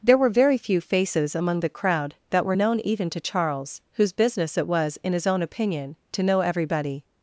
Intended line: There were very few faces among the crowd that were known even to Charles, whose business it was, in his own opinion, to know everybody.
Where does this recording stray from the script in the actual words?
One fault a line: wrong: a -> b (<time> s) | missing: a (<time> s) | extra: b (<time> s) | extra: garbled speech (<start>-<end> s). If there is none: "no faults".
no faults